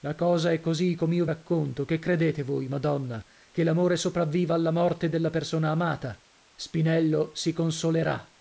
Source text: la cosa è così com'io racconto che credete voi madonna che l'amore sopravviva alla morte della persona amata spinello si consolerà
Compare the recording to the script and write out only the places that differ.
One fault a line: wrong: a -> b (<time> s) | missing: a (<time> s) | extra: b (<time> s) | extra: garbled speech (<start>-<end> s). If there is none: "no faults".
no faults